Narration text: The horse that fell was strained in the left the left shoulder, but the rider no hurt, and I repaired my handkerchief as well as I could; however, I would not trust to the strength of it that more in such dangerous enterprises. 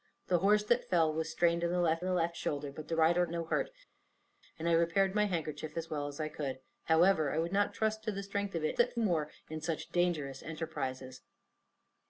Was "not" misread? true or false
false